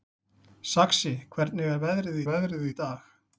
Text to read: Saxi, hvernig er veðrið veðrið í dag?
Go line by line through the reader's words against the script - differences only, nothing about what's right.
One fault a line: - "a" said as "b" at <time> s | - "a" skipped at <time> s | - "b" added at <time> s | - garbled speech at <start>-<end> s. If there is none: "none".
none